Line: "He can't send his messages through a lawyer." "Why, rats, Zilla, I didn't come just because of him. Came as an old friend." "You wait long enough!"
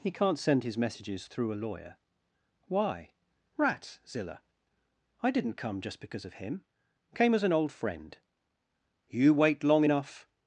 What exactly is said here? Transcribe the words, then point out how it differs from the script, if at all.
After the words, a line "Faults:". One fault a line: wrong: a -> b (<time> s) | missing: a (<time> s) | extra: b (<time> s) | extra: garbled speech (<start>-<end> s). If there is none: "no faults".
"He can't send his messages through a lawyer." "Why, rats, Zilla, I didn't come just because of him. Came as an old friend." "You wait long enough!"
Faults:
no faults